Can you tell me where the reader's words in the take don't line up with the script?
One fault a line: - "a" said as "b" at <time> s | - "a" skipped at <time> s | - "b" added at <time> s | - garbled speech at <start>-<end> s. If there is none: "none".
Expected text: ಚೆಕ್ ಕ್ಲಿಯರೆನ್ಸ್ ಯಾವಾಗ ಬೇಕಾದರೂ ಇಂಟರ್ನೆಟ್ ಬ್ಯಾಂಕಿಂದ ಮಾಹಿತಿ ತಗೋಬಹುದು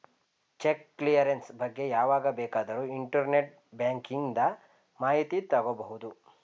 - "ಬಗ್ಗೆ" added at 1.6 s